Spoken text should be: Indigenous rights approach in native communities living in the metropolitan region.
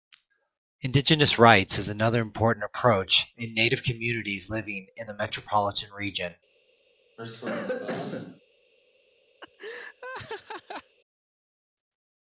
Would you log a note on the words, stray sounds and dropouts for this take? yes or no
yes